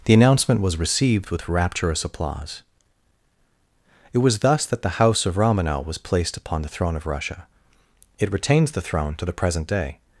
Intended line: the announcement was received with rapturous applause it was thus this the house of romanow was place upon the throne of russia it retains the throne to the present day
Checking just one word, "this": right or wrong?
wrong